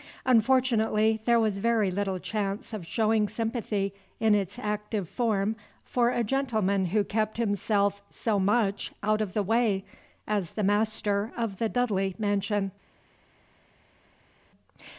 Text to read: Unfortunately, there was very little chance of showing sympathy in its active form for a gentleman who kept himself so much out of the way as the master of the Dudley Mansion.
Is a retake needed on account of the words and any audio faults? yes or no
no